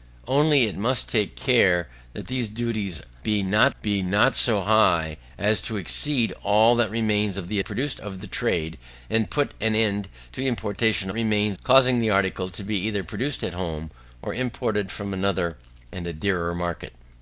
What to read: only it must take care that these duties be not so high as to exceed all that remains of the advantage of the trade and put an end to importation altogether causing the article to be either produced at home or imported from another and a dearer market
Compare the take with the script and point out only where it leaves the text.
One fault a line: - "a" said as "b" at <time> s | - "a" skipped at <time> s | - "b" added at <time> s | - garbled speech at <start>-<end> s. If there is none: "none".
- "be not" added at 3.8 s
- "advantage" said as "produced" at 7.6 s
- "altogether" said as "remains" at 11.1 s